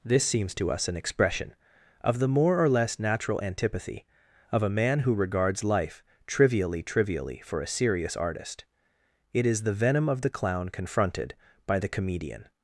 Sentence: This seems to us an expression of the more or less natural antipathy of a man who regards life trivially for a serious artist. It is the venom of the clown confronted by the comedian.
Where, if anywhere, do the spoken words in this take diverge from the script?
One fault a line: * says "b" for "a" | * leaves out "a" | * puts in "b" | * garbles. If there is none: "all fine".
* puts in "trivially"